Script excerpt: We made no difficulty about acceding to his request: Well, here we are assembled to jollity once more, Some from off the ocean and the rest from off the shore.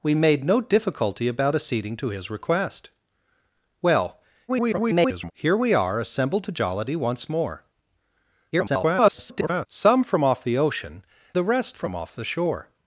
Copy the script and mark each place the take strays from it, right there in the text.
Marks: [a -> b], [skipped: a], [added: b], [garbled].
We made no difficulty about acceding to his request: Well, [garbled] here we are assembled to jollity once more, [garbled] Some from off the ocean [skipped: and] the rest from off the shore.